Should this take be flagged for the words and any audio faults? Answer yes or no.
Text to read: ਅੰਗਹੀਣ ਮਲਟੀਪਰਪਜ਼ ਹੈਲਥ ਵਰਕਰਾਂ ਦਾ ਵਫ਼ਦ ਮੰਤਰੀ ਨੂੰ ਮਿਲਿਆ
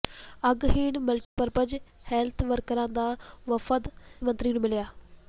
yes